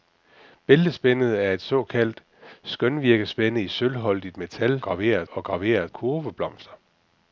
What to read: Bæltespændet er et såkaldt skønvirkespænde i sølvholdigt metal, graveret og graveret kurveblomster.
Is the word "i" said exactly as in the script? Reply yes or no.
yes